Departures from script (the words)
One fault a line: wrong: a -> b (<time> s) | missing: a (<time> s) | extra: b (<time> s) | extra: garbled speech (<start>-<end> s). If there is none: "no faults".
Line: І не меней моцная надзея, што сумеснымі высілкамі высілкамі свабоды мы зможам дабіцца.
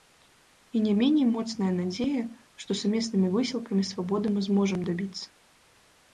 missing: высілкамі (3.9 s)